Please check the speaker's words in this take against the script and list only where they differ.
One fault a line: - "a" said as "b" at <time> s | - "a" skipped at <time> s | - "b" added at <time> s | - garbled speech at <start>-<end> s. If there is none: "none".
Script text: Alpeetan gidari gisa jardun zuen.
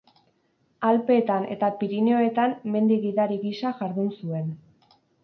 - "eta Pirinioetan mendi" added at 1.6 s